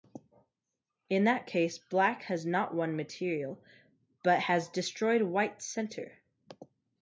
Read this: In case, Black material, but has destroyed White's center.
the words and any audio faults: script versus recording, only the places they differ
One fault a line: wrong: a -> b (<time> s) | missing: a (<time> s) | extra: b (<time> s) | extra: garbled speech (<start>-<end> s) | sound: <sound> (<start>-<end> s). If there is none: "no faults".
extra: that (1.2 s)
extra: has not won (2.2 s)